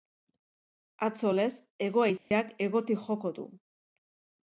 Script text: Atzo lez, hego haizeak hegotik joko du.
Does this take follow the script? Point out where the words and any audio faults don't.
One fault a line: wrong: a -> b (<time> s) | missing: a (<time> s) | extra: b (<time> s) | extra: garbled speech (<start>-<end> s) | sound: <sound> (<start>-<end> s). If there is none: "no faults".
sound: dropout (2.2-2.3 s)